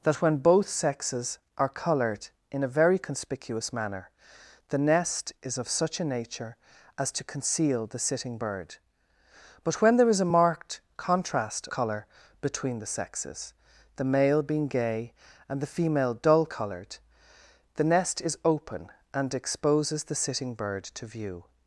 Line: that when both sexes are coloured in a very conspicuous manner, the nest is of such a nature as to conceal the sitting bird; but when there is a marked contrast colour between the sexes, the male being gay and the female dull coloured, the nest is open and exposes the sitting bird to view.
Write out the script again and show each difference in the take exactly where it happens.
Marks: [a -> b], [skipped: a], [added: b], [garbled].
that when both sexes are coloured in a very conspicuous manner, the nest is of such a nature as to conceal the sitting bird; but when there is a marked contrast colour between the sexes, the male being gay and the female dull coloured, the nest is open and exposes the sitting bird to view.